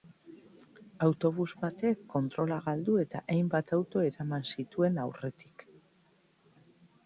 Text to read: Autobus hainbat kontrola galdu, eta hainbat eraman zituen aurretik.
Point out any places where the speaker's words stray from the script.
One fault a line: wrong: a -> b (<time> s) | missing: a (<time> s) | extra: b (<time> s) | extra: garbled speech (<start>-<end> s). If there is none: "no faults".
wrong: hainbat -> batek (1.6 s)
extra: auto (3.8 s)